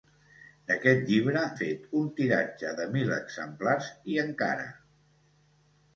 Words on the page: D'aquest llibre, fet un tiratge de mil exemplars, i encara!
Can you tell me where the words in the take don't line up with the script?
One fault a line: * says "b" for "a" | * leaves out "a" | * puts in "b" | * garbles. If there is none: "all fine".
all fine